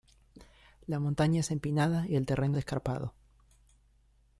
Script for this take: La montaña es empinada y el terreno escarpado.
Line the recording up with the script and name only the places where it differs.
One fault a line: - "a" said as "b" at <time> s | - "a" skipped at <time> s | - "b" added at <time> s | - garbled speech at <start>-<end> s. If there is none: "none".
none